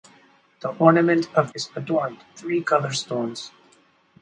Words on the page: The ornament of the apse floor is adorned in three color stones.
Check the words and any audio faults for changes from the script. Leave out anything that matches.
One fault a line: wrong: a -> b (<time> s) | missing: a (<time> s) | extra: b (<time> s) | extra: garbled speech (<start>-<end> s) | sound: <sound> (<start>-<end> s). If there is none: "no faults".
missing: the apse floor (1.5 s)
missing: in (2.2 s)